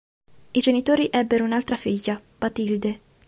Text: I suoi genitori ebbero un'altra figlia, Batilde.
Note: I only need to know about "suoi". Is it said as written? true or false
false